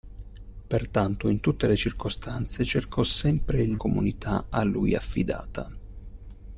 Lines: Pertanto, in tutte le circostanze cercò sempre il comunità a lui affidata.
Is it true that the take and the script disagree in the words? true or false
false